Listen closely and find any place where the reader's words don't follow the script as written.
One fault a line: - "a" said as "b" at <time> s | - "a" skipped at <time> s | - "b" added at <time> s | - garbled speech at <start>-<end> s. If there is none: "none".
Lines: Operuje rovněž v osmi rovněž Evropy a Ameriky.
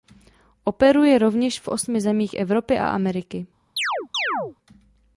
- "rovněž" said as "zemích" at 2.0 s